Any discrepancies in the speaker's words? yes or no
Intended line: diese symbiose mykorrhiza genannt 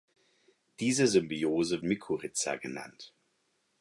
no